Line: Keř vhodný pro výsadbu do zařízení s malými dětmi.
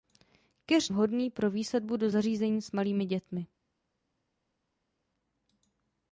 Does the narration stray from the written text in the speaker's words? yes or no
no